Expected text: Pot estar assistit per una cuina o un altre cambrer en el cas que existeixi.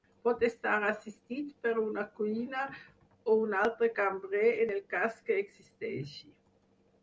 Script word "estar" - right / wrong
right